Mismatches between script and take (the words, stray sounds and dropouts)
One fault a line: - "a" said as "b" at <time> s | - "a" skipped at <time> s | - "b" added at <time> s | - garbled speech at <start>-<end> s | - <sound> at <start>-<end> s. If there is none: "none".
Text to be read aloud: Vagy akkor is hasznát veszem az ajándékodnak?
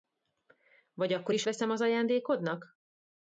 - "hasznát" skipped at 1.4 s